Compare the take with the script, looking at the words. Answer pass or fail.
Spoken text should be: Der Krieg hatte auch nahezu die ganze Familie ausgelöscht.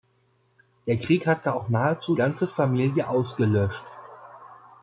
fail